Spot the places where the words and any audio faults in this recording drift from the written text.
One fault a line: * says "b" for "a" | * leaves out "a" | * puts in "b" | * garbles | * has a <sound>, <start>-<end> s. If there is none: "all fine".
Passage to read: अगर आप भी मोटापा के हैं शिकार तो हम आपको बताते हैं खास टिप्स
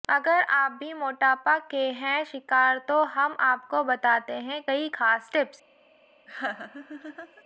* puts in "कई"
* has a laugh, 6.3-7.4 s